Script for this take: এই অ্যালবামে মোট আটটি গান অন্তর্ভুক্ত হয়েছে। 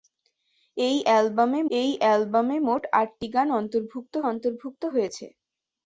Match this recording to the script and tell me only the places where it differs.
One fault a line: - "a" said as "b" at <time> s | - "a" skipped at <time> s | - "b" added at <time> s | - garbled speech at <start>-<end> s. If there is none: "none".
- "এই অ্যালবামে" added at 1.7 s
- "অন্তর্ভুক্ত" added at 4.3 s